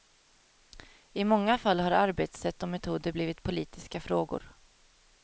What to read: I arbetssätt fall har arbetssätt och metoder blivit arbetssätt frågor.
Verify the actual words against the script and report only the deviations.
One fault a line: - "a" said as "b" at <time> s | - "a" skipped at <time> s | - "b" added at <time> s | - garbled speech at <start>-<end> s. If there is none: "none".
- "arbetssätt" said as "många" at 1.2 s
- "arbetssätt" said as "politiska" at 3.4 s